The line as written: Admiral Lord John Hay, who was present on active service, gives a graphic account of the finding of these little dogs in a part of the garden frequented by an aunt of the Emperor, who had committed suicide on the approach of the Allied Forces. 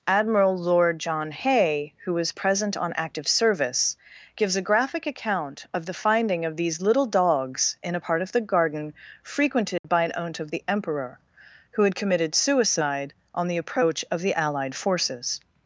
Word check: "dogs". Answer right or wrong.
right